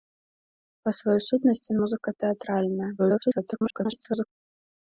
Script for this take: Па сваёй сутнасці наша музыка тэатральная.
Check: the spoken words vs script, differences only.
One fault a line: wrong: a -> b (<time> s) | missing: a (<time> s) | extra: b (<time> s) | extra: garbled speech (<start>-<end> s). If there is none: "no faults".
missing: наша (1.8 s)
extra: garbled speech (3.0-4.3 s)